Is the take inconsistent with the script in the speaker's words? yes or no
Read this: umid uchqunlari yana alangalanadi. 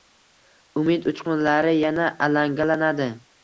no